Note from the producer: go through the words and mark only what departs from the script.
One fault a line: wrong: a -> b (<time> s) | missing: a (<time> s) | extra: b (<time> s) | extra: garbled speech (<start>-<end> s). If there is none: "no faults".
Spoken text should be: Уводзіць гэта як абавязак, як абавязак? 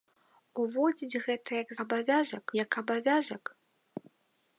no faults